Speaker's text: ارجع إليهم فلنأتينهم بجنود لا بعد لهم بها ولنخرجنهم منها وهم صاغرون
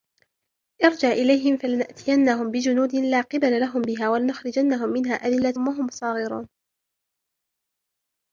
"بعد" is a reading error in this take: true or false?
true